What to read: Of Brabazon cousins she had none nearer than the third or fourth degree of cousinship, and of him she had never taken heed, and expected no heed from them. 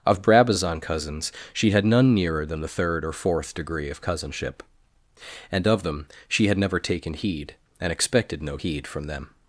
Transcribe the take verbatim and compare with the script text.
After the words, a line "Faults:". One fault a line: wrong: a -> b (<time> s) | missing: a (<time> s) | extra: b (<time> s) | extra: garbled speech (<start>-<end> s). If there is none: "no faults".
Of Brabazon cousins she had none nearer than the third or fourth degree of cousinship, and of them she had never taken heed, and expected no heed from them.
Faults:
wrong: him -> them (5.8 s)